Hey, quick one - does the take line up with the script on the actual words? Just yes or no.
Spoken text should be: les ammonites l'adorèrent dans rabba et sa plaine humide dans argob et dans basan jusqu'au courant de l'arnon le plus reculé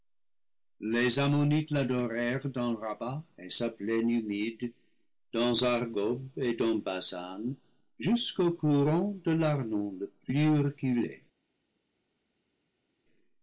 yes